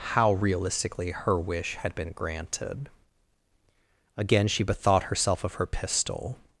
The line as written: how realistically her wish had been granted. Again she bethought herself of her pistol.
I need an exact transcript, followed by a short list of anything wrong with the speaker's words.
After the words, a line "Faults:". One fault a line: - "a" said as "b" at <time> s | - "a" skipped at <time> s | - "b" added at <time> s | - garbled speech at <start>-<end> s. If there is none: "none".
how realistically her wish had been granted. Again she bethought herself of her pistol.
Faults:
none